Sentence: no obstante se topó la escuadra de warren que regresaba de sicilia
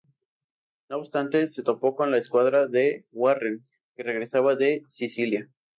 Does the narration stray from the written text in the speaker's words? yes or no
yes